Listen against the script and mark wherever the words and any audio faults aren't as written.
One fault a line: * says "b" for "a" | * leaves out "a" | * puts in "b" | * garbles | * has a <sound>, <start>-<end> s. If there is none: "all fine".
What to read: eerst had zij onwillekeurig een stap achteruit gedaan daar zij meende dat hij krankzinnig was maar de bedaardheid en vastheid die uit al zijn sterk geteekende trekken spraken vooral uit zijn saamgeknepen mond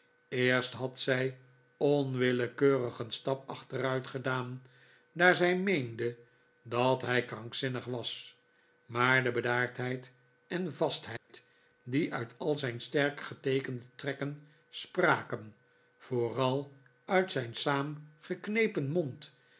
* has a dropout, 11.2-11.3 s